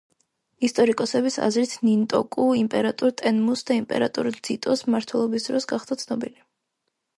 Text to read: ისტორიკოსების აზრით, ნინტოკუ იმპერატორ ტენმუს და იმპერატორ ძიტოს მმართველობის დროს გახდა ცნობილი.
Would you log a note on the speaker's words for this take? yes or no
no